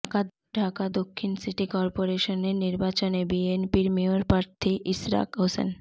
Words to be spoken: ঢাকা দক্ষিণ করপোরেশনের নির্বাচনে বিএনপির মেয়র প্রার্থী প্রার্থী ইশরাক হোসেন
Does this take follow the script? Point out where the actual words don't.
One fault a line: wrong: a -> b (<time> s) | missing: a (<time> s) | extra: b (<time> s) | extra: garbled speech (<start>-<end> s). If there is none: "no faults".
extra: সিটি (1.3 s)
missing: প্রার্থী (4.7 s)